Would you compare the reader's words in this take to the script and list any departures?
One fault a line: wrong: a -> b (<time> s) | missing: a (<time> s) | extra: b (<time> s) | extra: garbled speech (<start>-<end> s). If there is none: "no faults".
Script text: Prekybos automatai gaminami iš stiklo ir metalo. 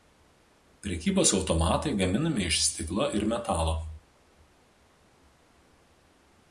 no faults